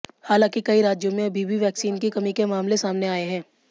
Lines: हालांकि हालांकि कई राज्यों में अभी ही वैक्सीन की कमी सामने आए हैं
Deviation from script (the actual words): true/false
true